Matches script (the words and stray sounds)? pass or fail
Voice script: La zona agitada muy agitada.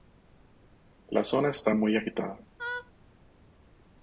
fail